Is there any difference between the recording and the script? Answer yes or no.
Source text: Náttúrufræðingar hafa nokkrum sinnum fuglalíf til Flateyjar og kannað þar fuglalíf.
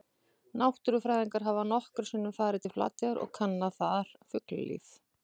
yes